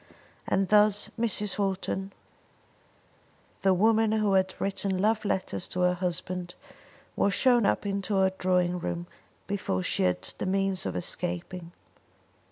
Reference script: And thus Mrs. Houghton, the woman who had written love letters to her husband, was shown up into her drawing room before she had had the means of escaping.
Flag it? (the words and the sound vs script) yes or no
yes